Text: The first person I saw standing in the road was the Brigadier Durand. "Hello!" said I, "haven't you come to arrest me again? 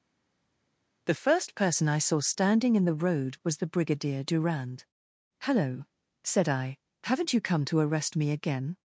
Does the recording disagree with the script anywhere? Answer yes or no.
no